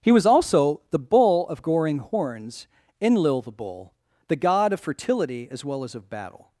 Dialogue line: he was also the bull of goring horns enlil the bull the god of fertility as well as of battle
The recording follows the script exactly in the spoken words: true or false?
true